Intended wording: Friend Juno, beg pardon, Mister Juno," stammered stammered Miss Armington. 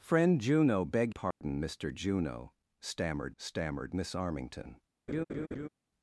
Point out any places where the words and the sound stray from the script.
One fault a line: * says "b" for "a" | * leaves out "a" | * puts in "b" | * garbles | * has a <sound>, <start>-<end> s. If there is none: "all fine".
* has a dropout, 1.3-1.4 s
* has a laugh, 5.1-5.7 s